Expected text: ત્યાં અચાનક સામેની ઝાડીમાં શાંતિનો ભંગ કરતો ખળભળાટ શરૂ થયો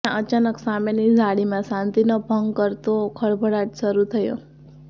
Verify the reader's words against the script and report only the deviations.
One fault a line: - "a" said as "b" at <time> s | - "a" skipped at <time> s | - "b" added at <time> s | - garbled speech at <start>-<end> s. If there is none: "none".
none